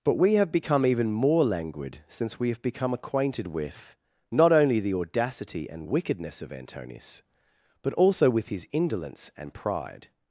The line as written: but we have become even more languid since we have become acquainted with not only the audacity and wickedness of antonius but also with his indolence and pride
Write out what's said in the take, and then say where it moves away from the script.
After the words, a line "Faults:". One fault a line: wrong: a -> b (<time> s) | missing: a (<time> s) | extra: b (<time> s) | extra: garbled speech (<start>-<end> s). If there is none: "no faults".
but we have become even more languid since we have become acquainted with not only the audacity and wickedness of antonius but also with his indolence and pride
Faults:
no faults